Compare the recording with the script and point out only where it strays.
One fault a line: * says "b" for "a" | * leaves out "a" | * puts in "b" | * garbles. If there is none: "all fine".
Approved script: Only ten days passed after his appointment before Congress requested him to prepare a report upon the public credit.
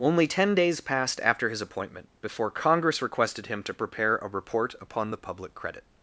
all fine